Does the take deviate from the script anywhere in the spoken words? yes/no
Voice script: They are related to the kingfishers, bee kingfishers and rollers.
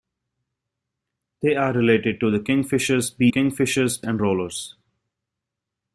no